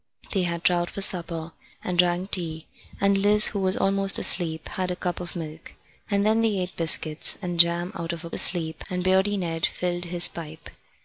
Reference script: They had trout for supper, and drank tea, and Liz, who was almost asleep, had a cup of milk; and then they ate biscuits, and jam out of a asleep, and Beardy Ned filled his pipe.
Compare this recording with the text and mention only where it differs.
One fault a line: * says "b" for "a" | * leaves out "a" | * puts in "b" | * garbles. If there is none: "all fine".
all fine